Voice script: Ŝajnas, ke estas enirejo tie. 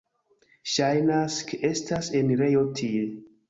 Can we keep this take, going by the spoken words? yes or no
yes